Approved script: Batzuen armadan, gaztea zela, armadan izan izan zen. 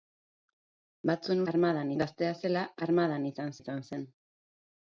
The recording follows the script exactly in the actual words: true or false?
true